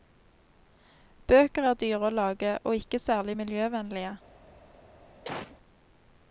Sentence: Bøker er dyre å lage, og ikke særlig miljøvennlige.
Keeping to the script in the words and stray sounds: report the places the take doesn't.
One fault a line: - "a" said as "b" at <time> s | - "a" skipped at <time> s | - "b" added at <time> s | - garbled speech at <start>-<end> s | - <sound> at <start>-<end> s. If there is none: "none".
- cough at 5.2-5.6 s